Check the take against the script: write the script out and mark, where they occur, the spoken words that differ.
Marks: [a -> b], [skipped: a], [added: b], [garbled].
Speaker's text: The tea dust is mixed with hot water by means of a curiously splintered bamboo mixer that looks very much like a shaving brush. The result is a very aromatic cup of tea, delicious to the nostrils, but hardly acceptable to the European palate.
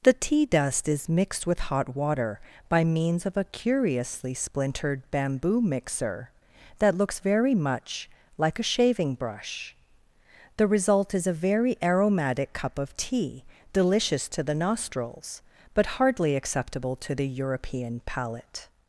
The tea dust is mixed with hot water by means of a curiously splintered bamboo mixer that looks very much like a shaving brush. The result is a very aromatic cup of tea, delicious to the nostrils, but hardly acceptable to the European palate.